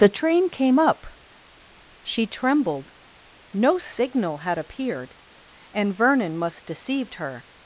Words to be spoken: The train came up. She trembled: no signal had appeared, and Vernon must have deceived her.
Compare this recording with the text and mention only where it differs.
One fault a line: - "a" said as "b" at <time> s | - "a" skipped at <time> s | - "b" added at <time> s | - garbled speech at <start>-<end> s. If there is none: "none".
- "have" skipped at 6.7 s